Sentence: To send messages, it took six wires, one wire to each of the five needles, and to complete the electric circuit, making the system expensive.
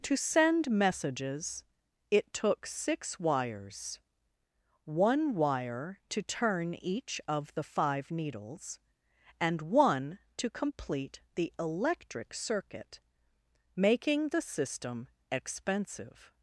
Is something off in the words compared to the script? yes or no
yes